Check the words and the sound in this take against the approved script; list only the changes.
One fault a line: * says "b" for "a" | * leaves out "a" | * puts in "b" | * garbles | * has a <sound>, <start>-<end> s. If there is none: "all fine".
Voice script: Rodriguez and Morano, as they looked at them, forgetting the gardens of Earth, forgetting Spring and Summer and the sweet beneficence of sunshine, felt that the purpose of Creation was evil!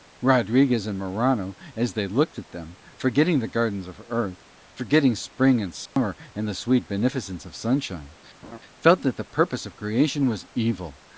* has a dropout, 5.9-6.0 s
* has a laugh, 8.4-8.6 s